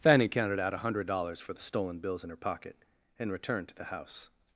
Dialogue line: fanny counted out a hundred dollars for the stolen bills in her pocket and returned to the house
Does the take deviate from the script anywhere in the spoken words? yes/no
no